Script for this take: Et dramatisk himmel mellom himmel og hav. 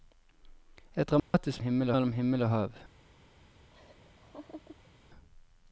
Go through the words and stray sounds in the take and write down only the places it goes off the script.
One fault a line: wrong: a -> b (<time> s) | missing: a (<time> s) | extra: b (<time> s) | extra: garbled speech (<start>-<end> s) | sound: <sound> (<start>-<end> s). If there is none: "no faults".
sound: dropout (1.2-1.3 s)
sound: laugh (3.7-4.9 s)